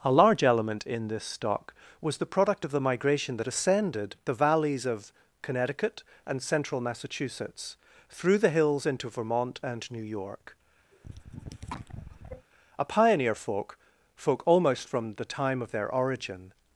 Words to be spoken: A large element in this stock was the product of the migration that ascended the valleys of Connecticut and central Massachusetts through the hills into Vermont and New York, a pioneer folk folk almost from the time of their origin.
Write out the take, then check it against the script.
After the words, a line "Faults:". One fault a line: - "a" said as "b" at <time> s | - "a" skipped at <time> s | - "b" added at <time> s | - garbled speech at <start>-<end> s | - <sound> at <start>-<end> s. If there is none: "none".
A large element in this stock was the product of the migration that ascended the valleys of Connecticut and central Massachusetts through the hills into Vermont and New York, a pioneer folk folk almost from the time of their origin.
Faults:
- cough at 10.9-12.5 s